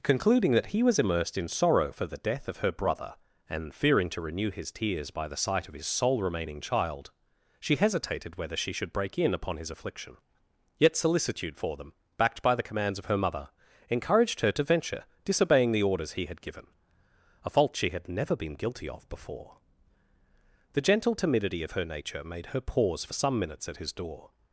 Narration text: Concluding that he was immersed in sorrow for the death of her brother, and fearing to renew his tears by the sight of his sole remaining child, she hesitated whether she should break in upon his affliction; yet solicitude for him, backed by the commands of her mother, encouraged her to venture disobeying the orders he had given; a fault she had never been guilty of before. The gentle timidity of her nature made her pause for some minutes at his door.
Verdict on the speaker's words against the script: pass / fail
fail